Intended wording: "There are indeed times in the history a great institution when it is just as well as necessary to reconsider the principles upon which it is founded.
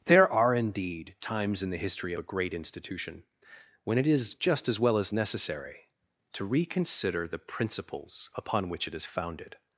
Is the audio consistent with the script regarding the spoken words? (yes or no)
yes